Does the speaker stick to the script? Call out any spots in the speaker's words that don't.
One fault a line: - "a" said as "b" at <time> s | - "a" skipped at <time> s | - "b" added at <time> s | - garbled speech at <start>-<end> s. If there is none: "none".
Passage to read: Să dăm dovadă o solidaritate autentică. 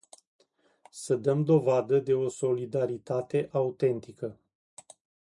- "de" added at 2.0 s